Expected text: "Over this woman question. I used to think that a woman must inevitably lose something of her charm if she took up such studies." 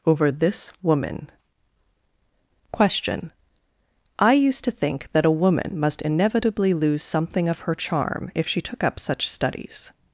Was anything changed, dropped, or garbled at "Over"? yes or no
no